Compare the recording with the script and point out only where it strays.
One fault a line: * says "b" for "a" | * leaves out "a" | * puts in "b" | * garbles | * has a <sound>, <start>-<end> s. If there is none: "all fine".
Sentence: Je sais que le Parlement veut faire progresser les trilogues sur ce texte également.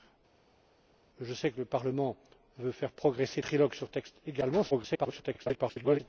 * leaves out "les"
* leaves out "ce"
* garbles